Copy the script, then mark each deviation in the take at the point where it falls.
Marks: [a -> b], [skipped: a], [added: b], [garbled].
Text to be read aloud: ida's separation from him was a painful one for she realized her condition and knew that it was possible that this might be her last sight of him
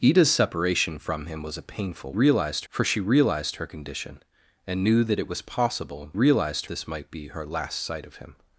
ida's separation from him was a painful [one -> realized] for she realized her condition and knew that it was possible [that -> realized] this might be her last sight of him